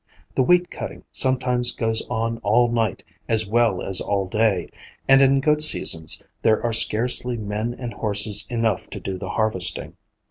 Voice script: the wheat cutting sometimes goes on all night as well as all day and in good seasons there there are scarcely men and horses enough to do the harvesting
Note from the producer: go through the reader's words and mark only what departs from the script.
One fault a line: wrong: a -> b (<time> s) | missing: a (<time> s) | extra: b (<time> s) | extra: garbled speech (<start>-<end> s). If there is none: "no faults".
missing: there (6.6 s)